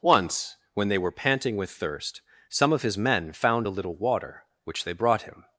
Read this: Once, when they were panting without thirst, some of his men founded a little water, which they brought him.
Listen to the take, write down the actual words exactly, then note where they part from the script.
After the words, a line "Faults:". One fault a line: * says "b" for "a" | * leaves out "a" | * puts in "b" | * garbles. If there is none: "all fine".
Once, when they were panting with thirst, some of his men found a little water, which they brought him.
Faults:
* says "with" for "without"
* says "found" for "founded"